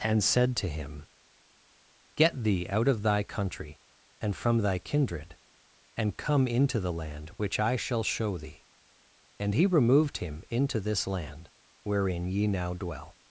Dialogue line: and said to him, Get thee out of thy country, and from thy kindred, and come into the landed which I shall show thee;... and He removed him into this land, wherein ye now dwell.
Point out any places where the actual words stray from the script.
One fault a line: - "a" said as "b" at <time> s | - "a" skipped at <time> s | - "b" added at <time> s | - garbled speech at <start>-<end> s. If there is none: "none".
- "landed" said as "land" at 6.9 s